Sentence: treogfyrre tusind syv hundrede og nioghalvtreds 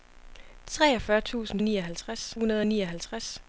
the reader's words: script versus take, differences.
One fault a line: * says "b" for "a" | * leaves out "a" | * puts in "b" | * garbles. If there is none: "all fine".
* says "nioghalvtreds" for "syv"